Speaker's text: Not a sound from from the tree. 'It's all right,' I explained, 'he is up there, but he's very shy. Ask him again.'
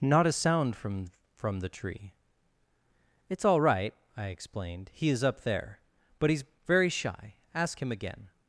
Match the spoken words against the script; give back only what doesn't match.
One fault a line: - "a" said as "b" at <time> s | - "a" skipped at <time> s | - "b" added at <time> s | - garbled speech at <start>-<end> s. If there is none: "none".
none